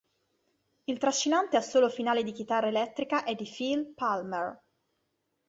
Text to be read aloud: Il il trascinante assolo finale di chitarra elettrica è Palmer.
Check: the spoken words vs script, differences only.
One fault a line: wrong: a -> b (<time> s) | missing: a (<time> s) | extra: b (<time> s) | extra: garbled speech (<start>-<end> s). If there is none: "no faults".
missing: il (1.0 s)
extra: di Phil (3.4 s)